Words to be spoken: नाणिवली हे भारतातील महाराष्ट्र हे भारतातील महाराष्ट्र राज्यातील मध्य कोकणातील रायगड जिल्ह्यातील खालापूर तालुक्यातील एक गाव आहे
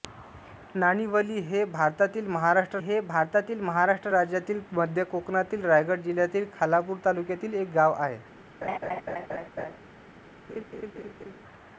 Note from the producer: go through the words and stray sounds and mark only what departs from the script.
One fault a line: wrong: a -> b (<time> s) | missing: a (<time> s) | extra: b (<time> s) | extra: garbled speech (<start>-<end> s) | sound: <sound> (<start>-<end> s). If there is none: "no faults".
sound: laugh (8.6-9.8 s)
sound: laugh (10.5-11.4 s)